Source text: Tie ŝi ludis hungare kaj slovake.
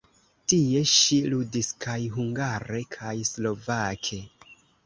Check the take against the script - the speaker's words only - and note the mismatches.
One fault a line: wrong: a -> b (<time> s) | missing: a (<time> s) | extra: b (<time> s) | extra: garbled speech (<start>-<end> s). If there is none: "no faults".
extra: kaj (1.9 s)